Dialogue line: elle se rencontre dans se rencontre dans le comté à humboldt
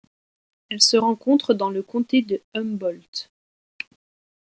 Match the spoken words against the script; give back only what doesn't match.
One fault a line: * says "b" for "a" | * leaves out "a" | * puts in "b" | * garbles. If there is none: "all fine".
* leaves out "se rencontre dans"
* says "de" for "à"